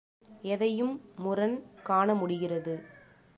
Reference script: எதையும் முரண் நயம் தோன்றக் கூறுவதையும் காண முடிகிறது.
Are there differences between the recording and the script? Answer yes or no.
yes